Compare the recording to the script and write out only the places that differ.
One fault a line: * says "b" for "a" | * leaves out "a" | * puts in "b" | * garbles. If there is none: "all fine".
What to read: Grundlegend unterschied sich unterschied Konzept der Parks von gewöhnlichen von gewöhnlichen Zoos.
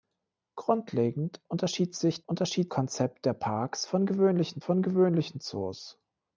all fine